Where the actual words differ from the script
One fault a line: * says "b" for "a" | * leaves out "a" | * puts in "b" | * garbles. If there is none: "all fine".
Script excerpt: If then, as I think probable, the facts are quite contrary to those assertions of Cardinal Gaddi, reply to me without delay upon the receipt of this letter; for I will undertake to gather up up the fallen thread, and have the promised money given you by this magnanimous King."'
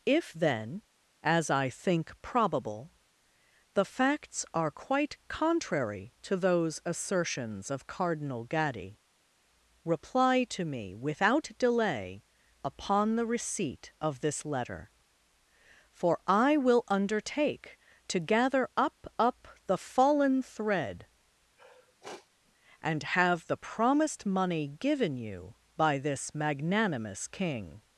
all fine